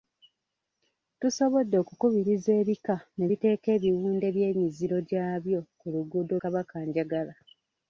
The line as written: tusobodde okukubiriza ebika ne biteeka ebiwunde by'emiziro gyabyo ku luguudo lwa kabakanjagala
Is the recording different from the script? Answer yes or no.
yes